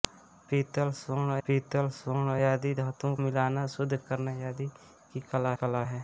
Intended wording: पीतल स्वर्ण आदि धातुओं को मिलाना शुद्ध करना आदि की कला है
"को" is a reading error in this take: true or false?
true